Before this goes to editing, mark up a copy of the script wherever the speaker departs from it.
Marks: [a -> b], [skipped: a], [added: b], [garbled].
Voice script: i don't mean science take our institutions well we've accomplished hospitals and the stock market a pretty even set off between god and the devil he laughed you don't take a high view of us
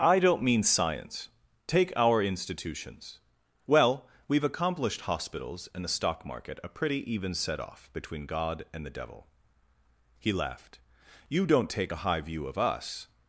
i don't mean science take our institutions well we've accomplished hospitals and the stock market a pretty even set off between god and the devil he laughed you don't take a high view of us